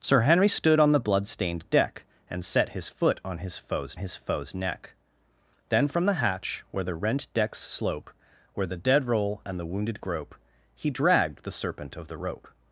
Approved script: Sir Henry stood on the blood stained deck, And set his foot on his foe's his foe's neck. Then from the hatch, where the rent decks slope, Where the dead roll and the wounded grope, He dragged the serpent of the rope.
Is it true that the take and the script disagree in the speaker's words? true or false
false